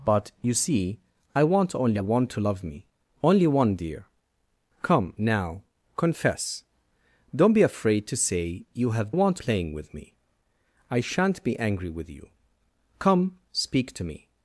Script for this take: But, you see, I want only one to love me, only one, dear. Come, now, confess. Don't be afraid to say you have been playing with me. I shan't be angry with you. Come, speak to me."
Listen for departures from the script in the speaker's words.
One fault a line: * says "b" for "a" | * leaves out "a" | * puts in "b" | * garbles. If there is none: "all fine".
* says "want" for "been"